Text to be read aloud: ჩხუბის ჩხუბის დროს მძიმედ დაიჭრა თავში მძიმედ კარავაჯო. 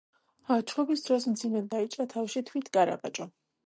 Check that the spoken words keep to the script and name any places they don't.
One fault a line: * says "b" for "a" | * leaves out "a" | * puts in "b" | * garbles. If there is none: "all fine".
* leaves out "ჩხუბის"
* says "თვით" for "მძიმედ"